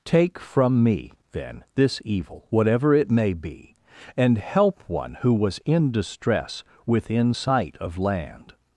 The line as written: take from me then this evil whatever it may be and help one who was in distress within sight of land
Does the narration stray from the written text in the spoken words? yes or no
no